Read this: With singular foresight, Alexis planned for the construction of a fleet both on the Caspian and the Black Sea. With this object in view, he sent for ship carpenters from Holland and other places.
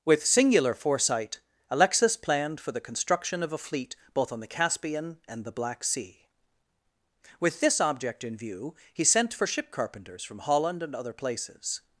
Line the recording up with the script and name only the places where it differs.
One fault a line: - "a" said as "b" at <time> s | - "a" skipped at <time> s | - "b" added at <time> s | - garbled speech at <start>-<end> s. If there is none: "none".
none